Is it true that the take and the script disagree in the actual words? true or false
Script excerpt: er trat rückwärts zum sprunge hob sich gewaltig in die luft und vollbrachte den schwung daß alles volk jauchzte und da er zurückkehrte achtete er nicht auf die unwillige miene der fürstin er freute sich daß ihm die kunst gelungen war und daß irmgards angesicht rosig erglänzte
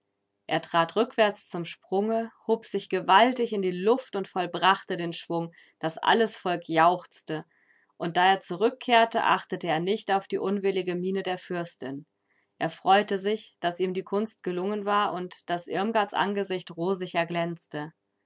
false